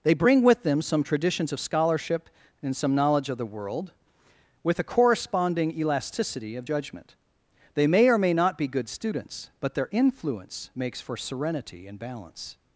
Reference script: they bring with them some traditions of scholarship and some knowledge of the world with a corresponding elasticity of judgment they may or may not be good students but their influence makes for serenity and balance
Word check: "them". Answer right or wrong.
right